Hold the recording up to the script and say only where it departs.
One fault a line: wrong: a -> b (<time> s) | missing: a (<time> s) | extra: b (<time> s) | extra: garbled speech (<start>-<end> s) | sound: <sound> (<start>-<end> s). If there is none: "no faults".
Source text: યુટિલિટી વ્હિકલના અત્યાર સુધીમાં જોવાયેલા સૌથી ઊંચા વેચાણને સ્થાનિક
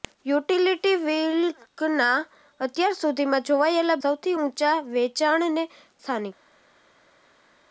no faults